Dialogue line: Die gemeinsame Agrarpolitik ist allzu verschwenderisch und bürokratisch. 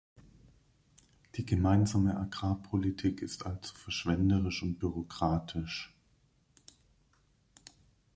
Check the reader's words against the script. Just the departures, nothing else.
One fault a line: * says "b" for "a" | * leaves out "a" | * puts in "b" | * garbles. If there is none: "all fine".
all fine